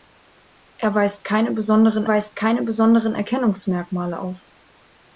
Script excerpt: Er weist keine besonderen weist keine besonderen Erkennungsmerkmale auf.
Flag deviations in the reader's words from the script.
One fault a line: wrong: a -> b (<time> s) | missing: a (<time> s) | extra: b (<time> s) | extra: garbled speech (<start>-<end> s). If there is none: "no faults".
no faults